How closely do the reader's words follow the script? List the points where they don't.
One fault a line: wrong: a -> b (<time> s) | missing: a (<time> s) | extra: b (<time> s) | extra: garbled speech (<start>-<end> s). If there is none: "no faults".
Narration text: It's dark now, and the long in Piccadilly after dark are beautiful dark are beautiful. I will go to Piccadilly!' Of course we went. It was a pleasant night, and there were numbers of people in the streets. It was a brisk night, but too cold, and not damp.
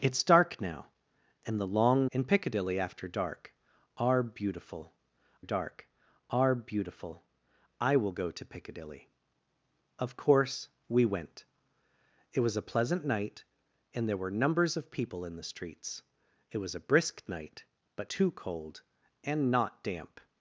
no faults